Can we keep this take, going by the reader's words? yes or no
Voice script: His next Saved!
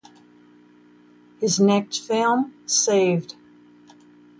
no